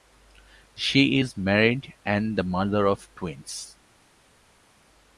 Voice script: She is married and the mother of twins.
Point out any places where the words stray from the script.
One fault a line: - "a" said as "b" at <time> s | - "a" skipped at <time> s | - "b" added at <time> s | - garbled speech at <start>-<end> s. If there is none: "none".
none